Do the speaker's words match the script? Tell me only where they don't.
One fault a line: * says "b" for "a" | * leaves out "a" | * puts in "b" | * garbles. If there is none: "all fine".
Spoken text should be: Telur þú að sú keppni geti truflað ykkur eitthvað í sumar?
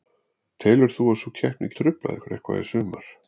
* leaves out "geti"